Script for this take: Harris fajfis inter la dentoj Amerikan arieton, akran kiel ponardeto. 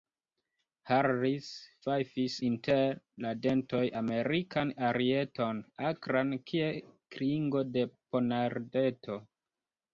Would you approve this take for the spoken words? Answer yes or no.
no